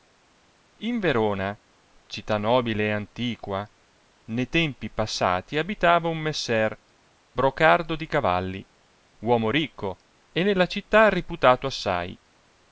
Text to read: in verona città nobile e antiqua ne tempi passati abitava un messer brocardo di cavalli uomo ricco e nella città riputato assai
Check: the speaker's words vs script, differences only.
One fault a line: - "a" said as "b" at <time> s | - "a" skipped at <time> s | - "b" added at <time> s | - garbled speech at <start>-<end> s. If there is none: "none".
none